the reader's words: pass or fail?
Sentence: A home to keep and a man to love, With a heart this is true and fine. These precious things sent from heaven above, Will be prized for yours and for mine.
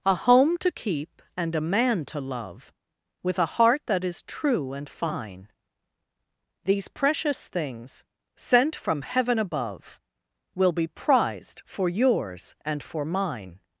fail